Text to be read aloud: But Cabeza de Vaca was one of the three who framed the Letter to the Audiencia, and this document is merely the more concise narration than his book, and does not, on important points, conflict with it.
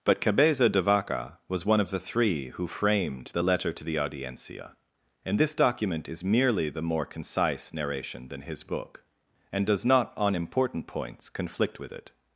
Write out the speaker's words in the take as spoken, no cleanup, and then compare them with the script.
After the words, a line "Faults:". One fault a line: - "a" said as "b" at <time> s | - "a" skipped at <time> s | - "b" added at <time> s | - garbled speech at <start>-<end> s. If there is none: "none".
But Cabeza de Vaca was one of the three who framed the Letter to the Audiencia, and this document is merely the more concise narration than his book, and does not, on important points, conflict with it.
Faults:
none